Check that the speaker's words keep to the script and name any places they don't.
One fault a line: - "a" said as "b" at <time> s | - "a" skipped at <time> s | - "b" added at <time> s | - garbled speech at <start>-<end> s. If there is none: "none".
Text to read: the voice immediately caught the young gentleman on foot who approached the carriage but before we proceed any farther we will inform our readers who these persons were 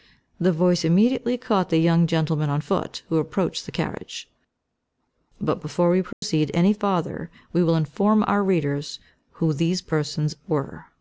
none